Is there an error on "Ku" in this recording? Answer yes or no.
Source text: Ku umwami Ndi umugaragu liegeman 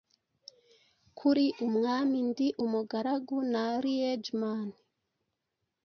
yes